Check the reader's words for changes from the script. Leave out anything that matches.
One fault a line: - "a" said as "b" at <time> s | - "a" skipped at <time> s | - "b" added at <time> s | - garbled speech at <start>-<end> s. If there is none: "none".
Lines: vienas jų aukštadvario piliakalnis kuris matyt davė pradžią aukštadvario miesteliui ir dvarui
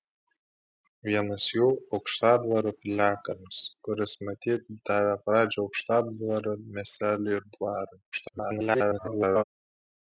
- garbled speech at 8.1-9.4 s